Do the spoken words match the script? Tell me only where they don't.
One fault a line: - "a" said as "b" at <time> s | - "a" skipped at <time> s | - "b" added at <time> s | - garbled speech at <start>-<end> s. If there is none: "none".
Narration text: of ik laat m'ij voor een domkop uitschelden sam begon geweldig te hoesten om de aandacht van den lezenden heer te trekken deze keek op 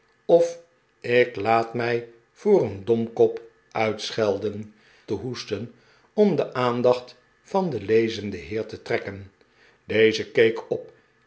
- "sam begon geweldig" skipped at 4.7 s